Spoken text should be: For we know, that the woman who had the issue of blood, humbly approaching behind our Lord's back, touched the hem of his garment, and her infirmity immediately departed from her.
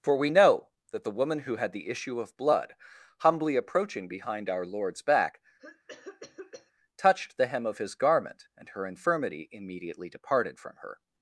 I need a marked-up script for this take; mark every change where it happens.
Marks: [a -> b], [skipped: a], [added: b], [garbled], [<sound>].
For we know, that the woman who had the issue of blood, humbly approaching behind our Lord's back, [cough] touched the hem of his garment, and her infirmity immediately departed from her.